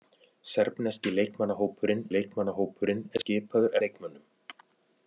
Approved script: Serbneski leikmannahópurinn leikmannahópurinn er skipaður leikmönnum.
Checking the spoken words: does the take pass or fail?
pass